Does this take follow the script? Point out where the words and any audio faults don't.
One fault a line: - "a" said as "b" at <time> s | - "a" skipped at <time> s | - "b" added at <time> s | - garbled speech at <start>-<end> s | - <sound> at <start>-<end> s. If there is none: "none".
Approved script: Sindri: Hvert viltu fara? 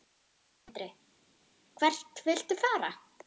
none